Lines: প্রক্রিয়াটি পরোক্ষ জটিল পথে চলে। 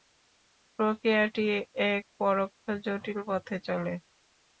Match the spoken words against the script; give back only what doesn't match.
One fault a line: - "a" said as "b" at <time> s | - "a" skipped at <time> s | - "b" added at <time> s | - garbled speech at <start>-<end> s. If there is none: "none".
- "এক" added at 1.9 s